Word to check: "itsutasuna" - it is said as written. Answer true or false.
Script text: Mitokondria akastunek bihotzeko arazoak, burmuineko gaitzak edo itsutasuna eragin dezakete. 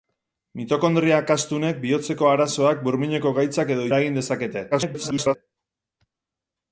false